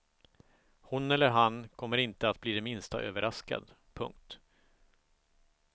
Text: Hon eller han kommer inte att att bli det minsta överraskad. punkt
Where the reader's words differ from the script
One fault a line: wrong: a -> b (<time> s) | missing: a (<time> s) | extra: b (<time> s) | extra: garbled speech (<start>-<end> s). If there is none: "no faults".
missing: att (2.4 s)